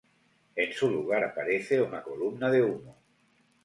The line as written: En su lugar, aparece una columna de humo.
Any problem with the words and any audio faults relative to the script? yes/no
no